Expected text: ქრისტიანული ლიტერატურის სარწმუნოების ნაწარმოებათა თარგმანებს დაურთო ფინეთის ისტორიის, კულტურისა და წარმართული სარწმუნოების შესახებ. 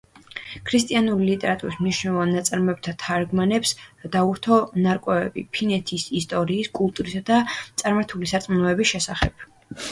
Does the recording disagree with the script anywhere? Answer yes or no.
yes